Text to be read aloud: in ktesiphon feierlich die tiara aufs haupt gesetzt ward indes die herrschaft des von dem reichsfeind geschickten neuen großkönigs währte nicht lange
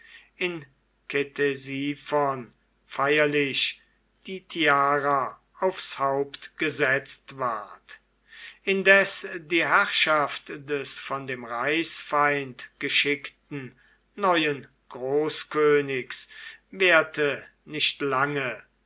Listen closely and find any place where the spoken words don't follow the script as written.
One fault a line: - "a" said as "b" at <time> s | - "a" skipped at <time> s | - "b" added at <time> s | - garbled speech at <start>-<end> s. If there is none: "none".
none